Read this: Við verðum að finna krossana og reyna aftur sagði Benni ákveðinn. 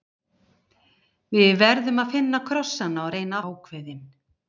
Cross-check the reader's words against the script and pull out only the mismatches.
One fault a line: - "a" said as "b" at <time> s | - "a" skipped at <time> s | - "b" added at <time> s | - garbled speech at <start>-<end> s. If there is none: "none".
- "aftur sagði Benni" skipped at 3.4 s